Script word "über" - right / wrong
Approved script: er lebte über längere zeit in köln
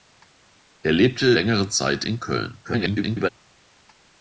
wrong